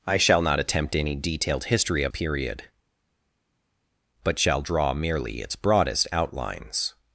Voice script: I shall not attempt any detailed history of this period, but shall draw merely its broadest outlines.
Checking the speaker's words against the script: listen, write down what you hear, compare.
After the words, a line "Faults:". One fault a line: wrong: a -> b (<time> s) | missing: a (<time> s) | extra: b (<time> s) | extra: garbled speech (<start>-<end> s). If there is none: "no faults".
I shall not attempt any detailed history of period, but shall draw merely its broadest outlines.
Faults:
missing: this (2.1 s)